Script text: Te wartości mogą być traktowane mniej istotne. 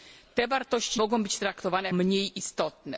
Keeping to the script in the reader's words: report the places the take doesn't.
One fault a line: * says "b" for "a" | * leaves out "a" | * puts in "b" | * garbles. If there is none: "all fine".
all fine